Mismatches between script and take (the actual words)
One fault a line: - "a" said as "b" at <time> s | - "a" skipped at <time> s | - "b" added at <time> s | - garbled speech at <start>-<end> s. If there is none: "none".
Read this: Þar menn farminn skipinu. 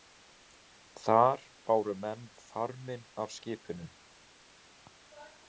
- "báru" added at 1.7 s
- "af" added at 3.2 s